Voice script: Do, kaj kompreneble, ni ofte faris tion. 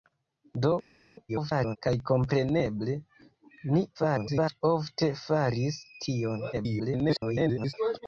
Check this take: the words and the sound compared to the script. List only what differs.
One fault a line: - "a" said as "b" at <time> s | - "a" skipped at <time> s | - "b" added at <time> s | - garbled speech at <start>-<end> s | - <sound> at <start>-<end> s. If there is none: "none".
- garbled speech at 1.3-1.8 s
- garbled speech at 3.9-4.6 s
- garbled speech at 6.5-7.7 s